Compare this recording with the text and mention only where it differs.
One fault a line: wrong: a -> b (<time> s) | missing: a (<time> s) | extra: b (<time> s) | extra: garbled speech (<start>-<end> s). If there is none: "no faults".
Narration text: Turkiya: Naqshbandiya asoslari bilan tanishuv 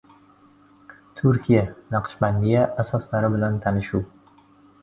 no faults